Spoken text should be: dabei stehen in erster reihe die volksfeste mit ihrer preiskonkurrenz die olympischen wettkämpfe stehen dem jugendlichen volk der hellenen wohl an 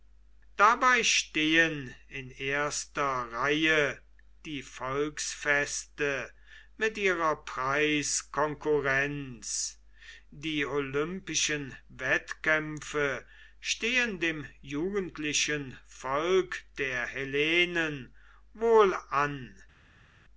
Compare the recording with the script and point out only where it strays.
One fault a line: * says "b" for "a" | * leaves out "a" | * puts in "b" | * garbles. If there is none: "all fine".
all fine